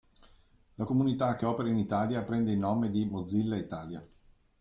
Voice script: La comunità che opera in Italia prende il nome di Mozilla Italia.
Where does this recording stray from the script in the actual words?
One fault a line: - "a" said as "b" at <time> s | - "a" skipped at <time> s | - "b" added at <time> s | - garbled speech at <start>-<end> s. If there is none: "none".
none